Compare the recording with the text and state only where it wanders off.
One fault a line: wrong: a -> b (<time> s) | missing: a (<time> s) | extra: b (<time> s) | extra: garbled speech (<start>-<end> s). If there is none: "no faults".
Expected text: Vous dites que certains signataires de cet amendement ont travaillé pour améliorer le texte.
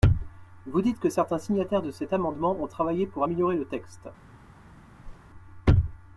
no faults